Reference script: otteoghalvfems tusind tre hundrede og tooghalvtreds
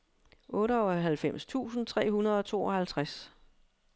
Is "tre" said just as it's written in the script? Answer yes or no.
yes